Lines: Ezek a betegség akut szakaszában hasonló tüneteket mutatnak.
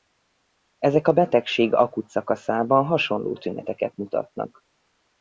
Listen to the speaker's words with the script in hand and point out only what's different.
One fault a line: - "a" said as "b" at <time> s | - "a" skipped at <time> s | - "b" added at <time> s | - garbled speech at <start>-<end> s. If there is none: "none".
none